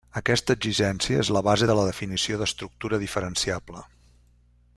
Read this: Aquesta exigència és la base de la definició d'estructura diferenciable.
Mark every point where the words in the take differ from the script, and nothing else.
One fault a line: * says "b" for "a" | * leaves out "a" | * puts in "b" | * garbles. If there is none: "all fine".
all fine